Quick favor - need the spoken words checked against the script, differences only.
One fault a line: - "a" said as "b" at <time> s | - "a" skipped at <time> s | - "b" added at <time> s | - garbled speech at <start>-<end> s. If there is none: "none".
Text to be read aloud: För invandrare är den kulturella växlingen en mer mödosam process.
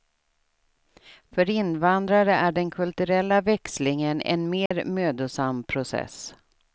none